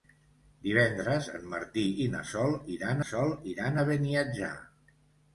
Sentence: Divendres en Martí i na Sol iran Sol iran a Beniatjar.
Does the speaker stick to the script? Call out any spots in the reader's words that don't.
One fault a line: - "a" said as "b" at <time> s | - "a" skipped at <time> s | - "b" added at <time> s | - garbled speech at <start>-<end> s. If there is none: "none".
none